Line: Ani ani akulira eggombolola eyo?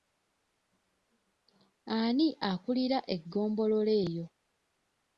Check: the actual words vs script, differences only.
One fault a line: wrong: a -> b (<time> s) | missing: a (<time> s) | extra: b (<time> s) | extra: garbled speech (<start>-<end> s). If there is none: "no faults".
missing: ani (2.3 s)